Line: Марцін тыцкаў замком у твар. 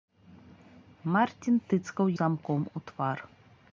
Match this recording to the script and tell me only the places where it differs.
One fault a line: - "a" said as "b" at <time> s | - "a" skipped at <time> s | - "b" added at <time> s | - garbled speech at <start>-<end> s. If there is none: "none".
none